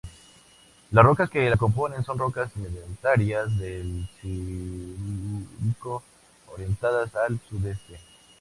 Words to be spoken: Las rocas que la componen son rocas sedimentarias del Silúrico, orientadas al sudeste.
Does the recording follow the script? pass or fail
pass